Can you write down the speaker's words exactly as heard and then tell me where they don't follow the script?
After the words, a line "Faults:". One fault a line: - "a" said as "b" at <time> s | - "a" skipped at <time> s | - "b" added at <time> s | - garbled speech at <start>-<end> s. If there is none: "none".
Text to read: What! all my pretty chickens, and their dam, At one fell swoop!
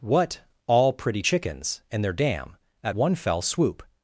What! all pretty chickens, and their dam, At one fell swoop!
Faults:
- "my" skipped at 0.9 s